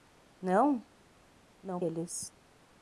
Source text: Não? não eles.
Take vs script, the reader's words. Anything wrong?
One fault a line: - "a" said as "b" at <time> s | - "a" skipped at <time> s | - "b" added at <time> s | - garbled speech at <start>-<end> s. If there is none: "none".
none